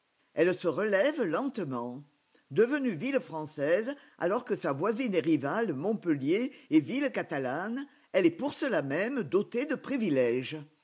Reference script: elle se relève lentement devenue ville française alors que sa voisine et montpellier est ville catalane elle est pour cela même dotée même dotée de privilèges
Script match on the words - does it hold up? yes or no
no